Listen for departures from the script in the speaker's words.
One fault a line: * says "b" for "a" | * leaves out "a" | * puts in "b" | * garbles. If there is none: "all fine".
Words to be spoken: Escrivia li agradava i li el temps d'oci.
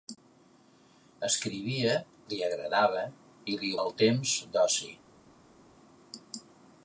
all fine